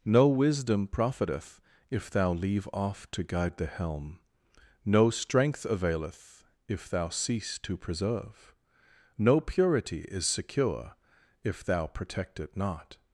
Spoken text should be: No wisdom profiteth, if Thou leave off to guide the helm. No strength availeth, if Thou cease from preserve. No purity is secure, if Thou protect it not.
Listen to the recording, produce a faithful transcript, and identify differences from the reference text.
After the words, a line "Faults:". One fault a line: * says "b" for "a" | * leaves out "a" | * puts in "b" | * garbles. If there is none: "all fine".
No wisdom profiteth, if Thou leave off to guide the helm. No strength availeth, if Thou cease to preserve. No purity is secure, if Thou protect it not.
Faults:
* says "to" for "from"